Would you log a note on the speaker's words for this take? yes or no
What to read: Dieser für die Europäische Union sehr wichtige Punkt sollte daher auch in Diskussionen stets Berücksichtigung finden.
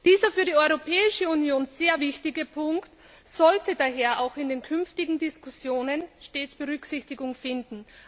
yes